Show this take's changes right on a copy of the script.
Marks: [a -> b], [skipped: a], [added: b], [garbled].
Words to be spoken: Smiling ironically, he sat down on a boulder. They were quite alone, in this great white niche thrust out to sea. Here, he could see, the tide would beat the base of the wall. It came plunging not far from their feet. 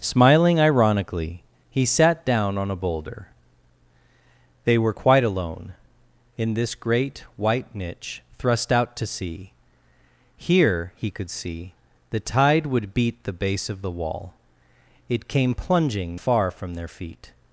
Smiling ironically, he sat down on a boulder. They were quite alone, in this great white niche thrust out to sea. Here, he could see, the tide would beat the base of the wall. It came plunging [skipped: not] far from their feet.